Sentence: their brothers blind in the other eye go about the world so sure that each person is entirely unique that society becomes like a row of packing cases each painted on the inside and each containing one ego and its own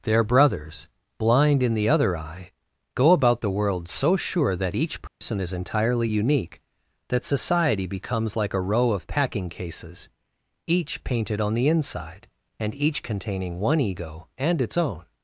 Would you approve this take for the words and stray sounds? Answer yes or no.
no